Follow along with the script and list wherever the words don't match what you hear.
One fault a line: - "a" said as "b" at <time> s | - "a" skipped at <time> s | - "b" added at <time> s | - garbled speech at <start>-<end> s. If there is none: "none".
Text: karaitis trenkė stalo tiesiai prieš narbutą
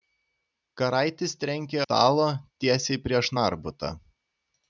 none